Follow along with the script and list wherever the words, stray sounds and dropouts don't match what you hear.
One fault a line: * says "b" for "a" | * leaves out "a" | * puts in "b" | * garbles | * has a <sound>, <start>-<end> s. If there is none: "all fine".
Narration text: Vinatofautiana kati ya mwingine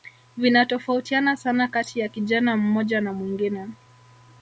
* puts in "sana"
* puts in "kijana mmoja na"